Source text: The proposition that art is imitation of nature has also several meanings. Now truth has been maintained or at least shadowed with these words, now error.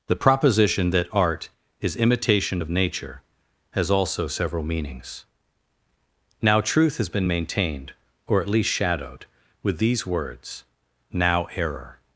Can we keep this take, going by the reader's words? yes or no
yes